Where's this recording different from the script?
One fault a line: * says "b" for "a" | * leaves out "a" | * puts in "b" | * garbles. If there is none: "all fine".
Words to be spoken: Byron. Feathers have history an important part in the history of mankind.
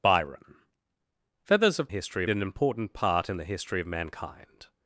all fine